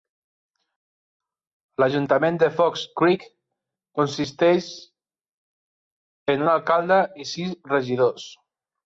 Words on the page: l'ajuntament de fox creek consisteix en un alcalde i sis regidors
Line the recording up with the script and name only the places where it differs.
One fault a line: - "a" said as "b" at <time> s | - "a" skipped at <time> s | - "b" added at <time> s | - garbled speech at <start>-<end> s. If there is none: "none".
none